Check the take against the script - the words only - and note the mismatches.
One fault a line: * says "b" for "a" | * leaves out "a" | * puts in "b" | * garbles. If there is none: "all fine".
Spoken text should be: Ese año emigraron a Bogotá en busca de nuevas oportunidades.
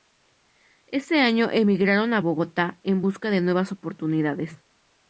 all fine